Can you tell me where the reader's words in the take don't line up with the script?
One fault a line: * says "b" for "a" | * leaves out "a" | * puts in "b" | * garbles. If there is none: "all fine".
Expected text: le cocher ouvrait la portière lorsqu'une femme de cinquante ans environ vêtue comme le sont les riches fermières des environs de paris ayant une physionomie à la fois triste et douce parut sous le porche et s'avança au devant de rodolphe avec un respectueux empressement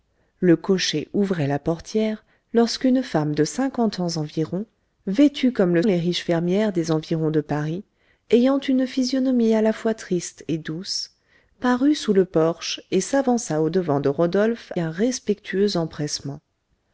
* leaves out "sont"
* leaves out "avec"